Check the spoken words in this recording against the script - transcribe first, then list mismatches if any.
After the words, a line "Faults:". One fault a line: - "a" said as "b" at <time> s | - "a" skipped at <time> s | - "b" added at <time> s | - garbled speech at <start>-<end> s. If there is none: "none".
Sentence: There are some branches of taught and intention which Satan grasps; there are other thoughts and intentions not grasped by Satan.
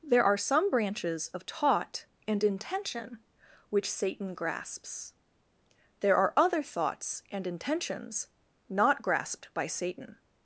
There are some branches of taught and intention which Satan grasps; there are other thoughts and intentions not grasped by Satan.
Faults:
none